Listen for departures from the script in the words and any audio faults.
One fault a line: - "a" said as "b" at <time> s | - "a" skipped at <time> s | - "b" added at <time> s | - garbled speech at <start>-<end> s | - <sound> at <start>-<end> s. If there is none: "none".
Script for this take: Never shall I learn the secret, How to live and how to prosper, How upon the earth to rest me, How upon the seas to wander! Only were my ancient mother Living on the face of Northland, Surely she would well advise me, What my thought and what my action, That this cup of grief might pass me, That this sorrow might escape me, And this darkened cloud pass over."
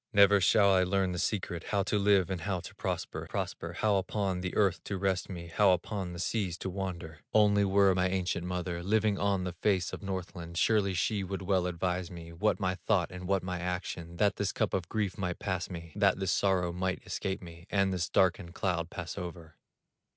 - "prosper" added at 3.2 s